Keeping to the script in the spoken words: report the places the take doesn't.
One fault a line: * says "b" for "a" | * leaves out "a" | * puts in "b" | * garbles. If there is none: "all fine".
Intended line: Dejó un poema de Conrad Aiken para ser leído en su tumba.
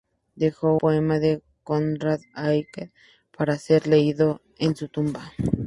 * leaves out "un"